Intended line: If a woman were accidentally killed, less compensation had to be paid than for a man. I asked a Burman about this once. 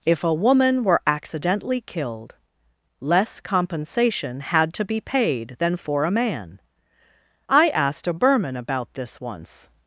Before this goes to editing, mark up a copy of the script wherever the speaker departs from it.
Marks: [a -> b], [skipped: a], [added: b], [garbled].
If a woman were accidentally killed, less compensation had to be paid than for a man. I asked a Burman about this once.